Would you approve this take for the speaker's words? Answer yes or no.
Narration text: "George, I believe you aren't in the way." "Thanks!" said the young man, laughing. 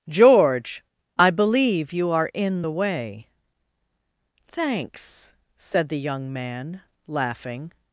no